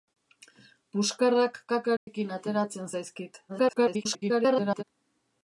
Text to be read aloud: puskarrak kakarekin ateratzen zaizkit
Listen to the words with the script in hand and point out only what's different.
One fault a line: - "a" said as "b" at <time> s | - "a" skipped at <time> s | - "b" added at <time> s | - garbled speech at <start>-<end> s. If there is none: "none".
- garbled speech at 3.5-4.8 s